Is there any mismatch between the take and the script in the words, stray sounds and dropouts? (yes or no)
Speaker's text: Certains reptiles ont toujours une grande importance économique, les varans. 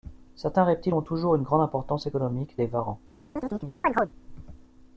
yes